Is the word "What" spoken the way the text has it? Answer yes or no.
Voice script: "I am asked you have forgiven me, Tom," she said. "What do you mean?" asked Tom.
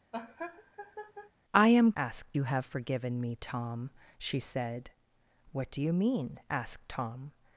yes